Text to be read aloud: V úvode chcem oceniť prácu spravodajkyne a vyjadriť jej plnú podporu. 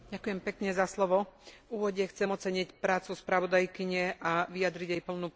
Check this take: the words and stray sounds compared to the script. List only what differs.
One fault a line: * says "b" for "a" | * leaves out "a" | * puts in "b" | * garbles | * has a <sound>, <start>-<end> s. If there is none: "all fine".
all fine